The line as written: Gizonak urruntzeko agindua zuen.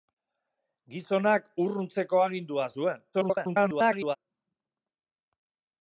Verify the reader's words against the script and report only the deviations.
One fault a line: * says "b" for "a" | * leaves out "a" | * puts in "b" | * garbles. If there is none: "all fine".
* garbles